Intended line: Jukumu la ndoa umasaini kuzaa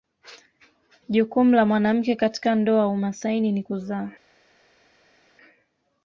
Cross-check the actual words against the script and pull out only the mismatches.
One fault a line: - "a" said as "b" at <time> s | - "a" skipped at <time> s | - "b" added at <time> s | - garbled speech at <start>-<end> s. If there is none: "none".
- "mwanamke katika" added at 1.6 s
- "ni" added at 3.5 s